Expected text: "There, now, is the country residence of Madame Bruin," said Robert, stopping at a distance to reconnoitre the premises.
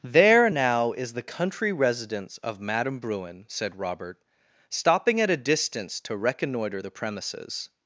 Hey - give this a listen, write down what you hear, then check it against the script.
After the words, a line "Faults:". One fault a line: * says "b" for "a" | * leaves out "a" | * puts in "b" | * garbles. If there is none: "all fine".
"There, now, is the country residence of Madame Bruin," said Robert, stopping at a distance to reconnoitre the premises.
Faults:
all fine